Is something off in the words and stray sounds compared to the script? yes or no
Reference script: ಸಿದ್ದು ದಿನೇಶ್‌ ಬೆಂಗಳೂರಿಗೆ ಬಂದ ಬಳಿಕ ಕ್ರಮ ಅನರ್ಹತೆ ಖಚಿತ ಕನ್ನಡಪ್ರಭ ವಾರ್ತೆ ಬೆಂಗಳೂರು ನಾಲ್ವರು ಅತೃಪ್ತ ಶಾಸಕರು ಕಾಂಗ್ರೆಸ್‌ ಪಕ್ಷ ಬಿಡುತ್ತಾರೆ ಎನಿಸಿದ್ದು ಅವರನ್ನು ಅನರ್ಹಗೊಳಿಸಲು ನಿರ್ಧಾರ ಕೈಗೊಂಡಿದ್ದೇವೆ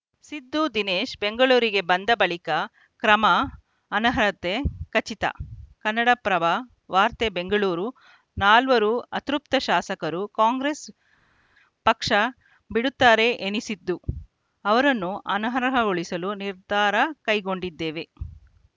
no